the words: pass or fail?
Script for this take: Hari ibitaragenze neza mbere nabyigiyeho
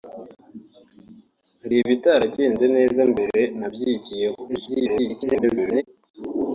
fail